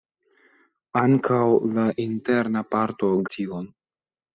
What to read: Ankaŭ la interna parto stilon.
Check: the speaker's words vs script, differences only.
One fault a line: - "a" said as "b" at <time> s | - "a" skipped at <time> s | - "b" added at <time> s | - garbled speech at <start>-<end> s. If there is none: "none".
none